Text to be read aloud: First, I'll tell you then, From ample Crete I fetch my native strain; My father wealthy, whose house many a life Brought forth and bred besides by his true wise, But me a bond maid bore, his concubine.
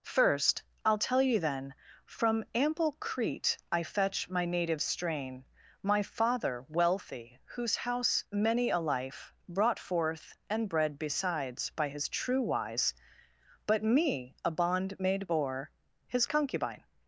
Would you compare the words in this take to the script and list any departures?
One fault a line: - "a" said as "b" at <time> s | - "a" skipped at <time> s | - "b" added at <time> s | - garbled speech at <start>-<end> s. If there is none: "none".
none